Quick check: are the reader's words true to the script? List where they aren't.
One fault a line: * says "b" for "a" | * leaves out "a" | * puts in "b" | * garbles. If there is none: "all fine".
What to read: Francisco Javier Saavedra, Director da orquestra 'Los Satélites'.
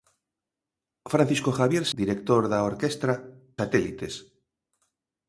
* leaves out "Saavedra"
* leaves out "Los"